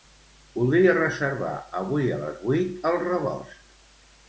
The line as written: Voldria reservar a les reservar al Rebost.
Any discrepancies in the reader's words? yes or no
yes